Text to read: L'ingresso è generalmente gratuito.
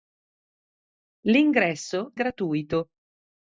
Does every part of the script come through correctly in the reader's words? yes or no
no